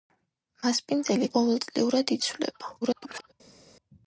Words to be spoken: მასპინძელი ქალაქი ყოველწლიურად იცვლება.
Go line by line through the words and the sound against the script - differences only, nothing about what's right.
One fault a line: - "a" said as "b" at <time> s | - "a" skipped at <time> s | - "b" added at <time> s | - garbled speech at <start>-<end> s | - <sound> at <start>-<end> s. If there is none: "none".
- "ქალაქი" skipped at 1.3 s
- garbled speech at 2.8-3.3 s